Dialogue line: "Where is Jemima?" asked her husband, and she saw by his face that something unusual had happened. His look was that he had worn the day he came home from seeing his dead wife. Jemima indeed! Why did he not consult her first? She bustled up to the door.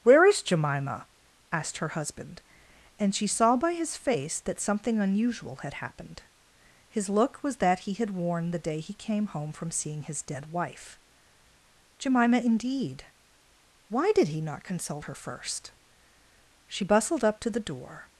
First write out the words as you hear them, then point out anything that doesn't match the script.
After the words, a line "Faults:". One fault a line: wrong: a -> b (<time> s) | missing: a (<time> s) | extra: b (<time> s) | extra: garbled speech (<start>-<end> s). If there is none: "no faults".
"Where is Jemima?" asked her husband, and she saw by his face that something unusual had happened. His look was that he had worn the day he came home from seeing his dead wife. Jemima indeed! Why did he not consult her first? She bustled up to the door.
Faults:
no faults